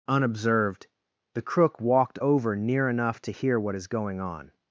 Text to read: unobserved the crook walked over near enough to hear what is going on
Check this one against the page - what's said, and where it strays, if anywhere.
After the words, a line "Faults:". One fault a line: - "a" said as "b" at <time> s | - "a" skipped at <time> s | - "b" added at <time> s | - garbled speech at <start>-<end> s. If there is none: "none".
unobserved the crook walked over near enough to hear what is going on
Faults:
none